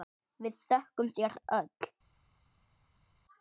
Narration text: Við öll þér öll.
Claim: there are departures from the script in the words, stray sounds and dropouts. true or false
true